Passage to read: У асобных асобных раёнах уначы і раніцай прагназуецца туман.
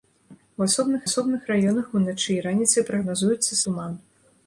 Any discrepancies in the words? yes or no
no